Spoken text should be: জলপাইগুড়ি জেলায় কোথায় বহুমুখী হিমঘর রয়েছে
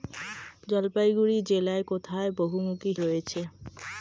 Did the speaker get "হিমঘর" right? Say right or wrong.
wrong